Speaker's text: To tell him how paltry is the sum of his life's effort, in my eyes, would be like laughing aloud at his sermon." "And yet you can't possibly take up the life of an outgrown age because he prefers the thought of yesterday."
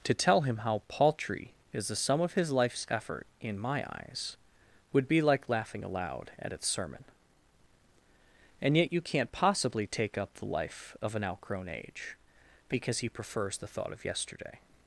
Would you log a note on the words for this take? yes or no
yes